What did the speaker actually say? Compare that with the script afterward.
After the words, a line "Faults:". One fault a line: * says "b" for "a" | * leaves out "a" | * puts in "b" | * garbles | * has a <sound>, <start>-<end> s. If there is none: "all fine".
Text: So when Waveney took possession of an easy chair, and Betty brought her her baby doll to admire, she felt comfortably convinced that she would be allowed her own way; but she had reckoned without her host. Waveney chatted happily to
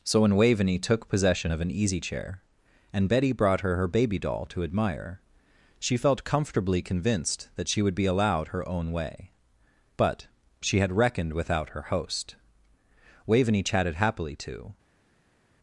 So when Waveney took possession of an easy chair, and Betty brought her her baby doll to admire, she felt comfortably convinced that she would be allowed her own way; but she had reckoned without her host. Waveney chatted happily to
Faults:
all fine